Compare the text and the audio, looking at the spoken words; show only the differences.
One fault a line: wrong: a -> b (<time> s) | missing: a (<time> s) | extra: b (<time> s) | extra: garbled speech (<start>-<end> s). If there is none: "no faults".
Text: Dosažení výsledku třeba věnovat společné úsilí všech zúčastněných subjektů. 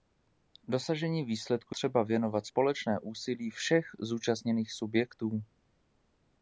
no faults